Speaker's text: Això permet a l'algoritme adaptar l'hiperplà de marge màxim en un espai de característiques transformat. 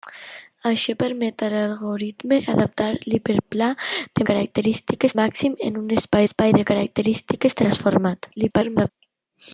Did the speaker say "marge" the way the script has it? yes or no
no